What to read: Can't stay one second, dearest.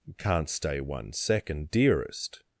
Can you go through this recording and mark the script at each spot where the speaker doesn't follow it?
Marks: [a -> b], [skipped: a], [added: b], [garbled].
Can't stay one second, dearest.